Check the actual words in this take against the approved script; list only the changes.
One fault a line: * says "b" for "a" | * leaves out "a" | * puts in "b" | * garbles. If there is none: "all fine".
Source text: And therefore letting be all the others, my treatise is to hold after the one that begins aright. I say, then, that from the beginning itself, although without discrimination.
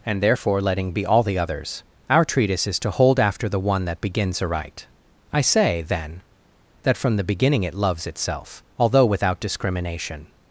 * says "our" for "my"
* puts in "it loves"